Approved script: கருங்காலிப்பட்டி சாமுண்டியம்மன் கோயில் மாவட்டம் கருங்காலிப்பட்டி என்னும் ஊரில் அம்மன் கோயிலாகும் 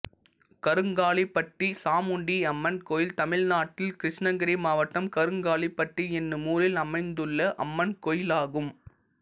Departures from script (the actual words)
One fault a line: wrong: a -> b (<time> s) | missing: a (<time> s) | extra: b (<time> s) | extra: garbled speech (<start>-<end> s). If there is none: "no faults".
extra: தமிழ்நாட்டில் கிருஷ்ணகிரி (3.1 s)
extra: அமைந்துள்ள (6.8 s)